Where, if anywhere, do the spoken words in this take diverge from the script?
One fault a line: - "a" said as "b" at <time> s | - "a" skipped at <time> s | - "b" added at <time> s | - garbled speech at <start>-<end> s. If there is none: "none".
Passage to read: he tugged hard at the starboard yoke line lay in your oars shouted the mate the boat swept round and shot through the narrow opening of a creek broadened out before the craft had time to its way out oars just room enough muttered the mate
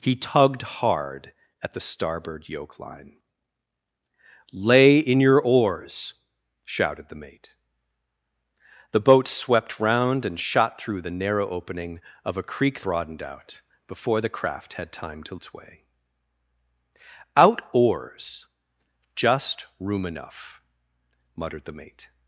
none